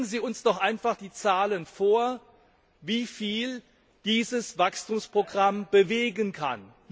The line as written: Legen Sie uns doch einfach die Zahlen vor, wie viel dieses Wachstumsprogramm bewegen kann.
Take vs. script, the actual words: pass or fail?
pass